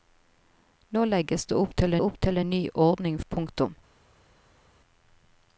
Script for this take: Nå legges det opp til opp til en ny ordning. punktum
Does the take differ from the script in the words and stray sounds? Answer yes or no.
no